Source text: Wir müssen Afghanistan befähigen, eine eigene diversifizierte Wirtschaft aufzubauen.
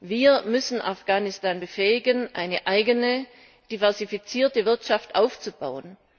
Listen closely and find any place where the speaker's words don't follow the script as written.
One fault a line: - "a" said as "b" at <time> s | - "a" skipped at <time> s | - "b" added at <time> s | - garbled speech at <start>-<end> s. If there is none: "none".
none